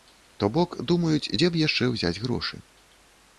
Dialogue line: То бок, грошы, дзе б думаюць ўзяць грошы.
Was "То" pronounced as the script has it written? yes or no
yes